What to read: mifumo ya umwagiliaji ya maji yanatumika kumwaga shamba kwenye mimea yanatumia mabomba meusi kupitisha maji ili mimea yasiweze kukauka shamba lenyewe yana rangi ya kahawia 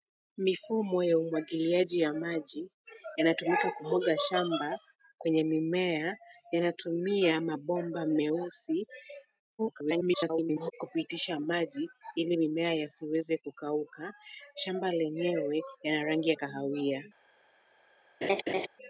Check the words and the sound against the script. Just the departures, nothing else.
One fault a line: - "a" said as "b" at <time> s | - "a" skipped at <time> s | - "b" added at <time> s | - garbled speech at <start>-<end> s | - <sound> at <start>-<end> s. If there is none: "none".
- garbled speech at 9.6-10.7 s
- laugh at 18.2-18.7 s